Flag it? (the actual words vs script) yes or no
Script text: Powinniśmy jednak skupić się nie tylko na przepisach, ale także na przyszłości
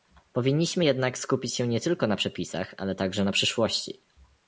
no